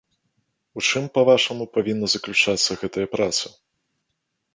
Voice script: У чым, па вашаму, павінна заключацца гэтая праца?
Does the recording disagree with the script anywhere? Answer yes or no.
no